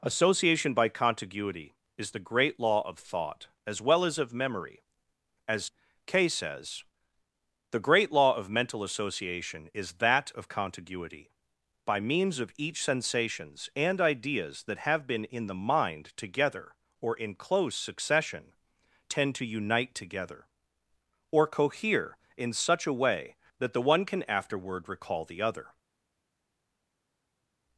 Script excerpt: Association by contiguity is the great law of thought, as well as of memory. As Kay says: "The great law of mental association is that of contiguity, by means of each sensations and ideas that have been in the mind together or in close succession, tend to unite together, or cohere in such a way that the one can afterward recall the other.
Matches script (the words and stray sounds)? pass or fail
pass